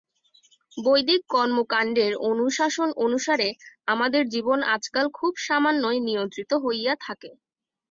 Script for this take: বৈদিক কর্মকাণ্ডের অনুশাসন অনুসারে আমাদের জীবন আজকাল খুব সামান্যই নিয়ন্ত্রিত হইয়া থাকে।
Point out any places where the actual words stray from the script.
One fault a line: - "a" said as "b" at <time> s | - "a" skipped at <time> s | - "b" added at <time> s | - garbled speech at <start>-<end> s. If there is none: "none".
none